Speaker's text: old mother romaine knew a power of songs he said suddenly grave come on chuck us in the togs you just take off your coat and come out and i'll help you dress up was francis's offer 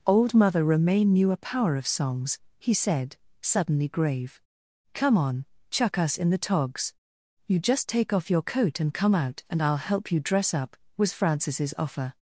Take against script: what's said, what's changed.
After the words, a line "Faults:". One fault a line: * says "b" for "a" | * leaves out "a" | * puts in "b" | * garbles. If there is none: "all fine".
old mother romaine knew a power of songs he said suddenly grave come on chuck us in the togs you just take off your coat and come out and i'll help you dress up was francis's offer
Faults:
all fine